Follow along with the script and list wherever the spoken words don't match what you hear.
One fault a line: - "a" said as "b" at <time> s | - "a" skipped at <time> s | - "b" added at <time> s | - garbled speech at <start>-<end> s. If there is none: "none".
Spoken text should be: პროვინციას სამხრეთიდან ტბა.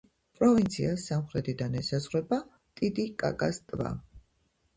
- "ესაზღვრება ტიტიკაკას" added at 1.8 s